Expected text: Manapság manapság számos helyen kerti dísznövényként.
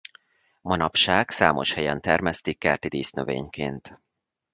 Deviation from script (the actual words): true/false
true